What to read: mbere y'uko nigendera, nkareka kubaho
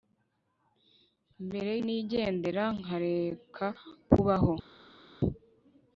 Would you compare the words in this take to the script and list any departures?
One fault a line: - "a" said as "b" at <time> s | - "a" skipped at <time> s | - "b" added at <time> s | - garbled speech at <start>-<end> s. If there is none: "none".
- "y'uko" skipped at 1.7 s